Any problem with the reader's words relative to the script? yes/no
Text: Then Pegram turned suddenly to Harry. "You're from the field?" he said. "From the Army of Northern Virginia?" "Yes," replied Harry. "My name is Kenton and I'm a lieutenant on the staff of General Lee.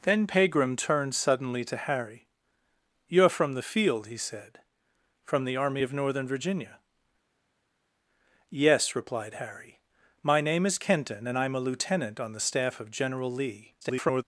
yes